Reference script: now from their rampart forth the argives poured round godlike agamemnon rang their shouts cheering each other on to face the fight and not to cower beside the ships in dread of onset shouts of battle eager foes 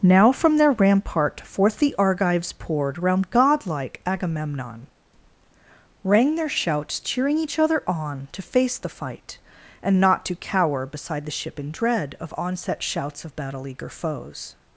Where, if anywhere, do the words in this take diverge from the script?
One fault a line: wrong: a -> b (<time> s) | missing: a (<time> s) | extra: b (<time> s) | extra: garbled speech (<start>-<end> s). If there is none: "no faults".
wrong: ships -> ship (11.3 s)